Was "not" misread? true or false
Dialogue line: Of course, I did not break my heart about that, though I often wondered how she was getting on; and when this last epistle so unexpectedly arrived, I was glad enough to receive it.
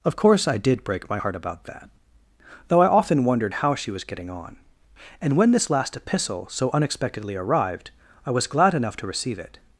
true